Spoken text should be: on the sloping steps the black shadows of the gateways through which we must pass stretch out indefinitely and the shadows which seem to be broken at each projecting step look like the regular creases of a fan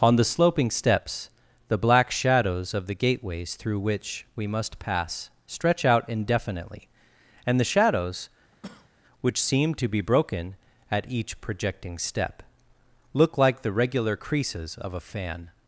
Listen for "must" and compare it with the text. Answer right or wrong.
right